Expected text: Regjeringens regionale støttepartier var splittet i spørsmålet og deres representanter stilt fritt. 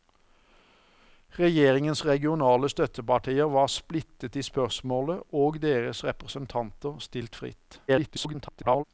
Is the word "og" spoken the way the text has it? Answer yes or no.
yes